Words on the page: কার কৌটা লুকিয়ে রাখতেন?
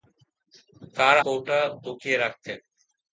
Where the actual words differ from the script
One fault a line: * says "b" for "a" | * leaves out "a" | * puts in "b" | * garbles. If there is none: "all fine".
all fine